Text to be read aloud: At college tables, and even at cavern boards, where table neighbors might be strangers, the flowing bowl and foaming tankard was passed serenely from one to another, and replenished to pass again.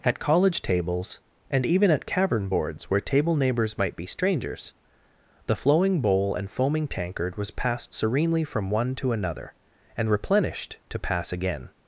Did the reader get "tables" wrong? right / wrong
right